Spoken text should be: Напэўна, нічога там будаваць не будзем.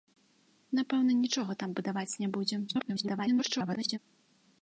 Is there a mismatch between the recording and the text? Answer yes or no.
yes